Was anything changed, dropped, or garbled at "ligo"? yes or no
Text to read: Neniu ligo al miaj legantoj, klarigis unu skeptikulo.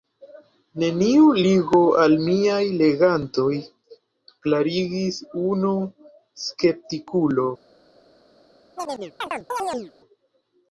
no